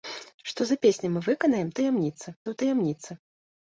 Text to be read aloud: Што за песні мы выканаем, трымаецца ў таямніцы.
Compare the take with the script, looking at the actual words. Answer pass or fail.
fail